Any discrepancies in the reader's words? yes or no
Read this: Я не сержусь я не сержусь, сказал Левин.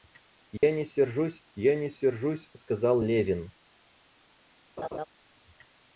no